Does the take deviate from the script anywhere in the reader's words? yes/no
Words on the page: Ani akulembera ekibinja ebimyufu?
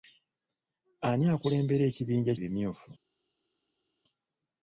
no